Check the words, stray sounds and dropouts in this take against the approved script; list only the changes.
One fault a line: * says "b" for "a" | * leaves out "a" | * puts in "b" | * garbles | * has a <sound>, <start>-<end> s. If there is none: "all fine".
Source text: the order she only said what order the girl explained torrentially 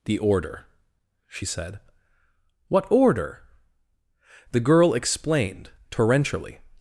* leaves out "only"